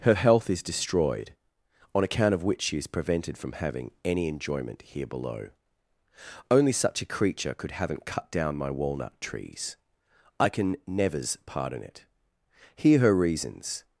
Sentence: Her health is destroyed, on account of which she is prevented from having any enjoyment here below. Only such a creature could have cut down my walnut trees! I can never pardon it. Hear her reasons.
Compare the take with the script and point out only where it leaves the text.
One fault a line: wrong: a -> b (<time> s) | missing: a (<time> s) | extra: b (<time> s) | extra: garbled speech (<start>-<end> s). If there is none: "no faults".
wrong: have -> haven't (7.7 s)
wrong: never -> nevers (10.9 s)